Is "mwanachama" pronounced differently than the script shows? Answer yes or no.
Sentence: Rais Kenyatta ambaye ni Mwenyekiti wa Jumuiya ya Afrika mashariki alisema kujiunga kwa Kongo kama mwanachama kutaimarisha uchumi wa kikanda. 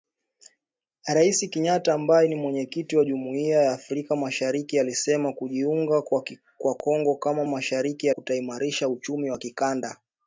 yes